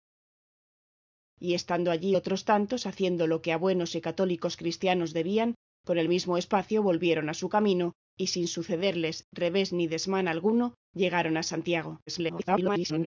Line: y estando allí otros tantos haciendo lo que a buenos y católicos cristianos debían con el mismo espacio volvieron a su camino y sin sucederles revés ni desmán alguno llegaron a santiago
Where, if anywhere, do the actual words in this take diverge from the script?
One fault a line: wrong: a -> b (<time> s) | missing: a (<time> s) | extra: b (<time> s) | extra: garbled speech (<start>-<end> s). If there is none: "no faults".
extra: garbled speech (12.1-13.1 s)